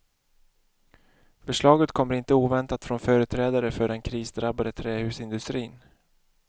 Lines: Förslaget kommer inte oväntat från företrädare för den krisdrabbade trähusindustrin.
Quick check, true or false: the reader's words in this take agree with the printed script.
true